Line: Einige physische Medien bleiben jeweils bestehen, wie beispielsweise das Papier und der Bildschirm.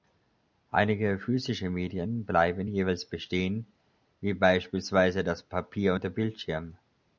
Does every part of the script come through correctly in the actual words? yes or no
yes